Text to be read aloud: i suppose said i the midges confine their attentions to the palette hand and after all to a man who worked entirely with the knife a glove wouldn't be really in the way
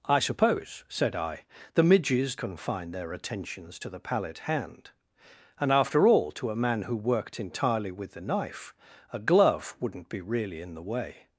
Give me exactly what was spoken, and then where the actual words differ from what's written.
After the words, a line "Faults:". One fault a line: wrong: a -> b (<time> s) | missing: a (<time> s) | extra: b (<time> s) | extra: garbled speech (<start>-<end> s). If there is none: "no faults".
i suppose said i the midges confine their attentions to the palette hand and after all to a man who worked entirely with the knife a glove wouldn't be really in the way
Faults:
no faults